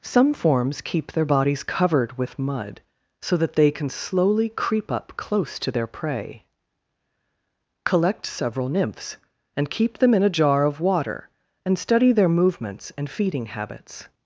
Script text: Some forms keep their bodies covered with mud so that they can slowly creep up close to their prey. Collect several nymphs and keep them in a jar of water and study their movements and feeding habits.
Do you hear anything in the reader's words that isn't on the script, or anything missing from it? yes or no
no